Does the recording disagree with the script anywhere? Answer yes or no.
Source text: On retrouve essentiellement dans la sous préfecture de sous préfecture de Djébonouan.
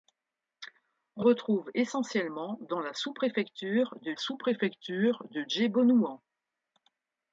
no